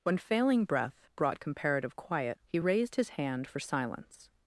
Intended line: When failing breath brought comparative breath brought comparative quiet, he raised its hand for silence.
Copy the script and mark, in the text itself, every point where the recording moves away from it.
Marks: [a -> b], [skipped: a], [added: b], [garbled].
When failing breath brought comparative [skipped: breath brought comparative] quiet, he raised [its -> his] hand for silence.